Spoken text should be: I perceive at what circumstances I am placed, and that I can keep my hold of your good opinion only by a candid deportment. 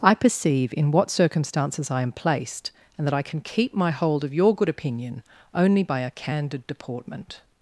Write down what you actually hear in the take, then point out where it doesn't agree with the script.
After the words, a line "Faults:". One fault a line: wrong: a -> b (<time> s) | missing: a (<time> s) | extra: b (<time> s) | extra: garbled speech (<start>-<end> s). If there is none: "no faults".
I perceive in what circumstances I am placed, and that I can keep my hold of your good opinion only by a candid deportment.
Faults:
wrong: at -> in (0.8 s)